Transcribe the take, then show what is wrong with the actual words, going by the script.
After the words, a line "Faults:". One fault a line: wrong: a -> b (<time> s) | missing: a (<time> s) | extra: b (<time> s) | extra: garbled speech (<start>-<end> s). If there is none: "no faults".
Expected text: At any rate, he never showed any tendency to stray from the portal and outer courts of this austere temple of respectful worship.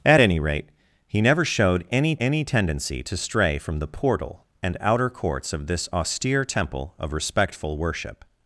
At any rate, he never showed any any tendency to stray from the portal and outer courts of this austere temple of respectful worship.
Faults:
extra: any (2.2 s)